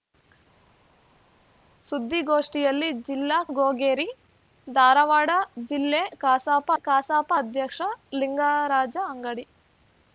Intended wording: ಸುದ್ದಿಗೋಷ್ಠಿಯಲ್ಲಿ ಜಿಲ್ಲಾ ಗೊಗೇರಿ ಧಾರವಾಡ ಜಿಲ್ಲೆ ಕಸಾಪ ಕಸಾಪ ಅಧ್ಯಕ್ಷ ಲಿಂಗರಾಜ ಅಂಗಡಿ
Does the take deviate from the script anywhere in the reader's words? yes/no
no